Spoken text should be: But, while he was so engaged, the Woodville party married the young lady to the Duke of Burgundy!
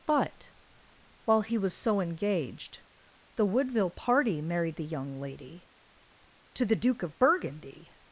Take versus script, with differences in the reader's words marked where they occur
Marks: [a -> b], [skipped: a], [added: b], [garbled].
But, while he was so engaged, the Woodville party married the young lady to the Duke of Burgundy!